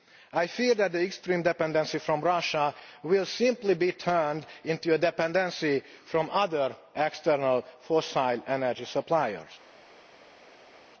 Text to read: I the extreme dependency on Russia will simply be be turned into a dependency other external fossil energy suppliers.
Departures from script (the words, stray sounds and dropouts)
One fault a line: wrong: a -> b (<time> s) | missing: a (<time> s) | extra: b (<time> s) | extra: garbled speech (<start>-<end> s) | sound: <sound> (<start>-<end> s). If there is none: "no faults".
extra: fear that (0.5 s)
missing: be (3.9 s)
extra: on (6.1 s)